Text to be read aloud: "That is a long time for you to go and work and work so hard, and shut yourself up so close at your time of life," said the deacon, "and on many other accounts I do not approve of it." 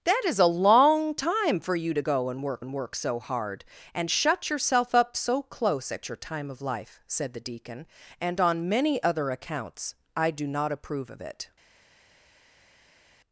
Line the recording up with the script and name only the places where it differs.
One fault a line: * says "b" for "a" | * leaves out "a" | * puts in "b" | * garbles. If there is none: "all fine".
all fine